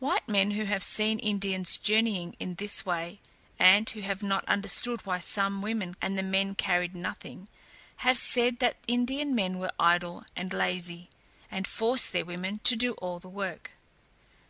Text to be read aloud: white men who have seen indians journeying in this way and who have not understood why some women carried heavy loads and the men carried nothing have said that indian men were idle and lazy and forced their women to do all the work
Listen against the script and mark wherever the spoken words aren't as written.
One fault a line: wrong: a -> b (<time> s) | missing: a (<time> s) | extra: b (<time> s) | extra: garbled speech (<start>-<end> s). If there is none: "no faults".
missing: carried heavy loads (5.9 s)